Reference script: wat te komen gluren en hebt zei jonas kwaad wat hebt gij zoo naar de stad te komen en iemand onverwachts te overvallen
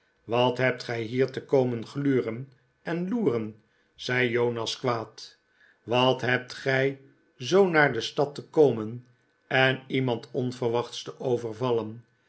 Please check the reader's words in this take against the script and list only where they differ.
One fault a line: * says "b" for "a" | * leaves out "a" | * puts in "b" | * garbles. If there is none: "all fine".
* puts in "hebt gij hier"
* says "loeren" for "hebt"